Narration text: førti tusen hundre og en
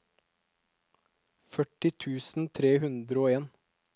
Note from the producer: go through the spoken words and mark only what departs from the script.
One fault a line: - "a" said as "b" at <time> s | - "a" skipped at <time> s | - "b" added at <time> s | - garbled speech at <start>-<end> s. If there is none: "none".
- "tre" added at 2.6 s